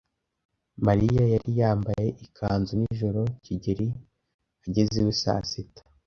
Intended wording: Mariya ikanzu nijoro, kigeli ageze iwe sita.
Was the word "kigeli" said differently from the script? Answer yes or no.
no